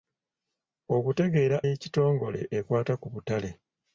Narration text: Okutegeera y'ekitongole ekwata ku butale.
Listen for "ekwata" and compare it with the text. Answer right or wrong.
right